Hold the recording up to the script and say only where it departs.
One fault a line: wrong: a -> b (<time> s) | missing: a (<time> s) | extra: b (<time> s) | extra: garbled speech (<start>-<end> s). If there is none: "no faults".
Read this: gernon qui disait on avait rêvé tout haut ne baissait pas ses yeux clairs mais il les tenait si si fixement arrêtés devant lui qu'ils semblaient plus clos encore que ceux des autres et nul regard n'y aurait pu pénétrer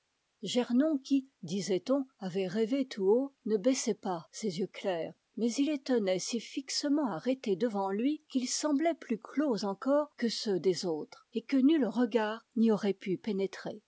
missing: si (6.4 s)
extra: que (11.4 s)